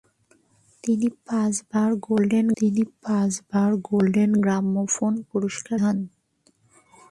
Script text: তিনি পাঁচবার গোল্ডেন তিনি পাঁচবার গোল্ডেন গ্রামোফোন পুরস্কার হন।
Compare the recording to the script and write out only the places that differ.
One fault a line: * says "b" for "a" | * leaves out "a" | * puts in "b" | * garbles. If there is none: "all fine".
all fine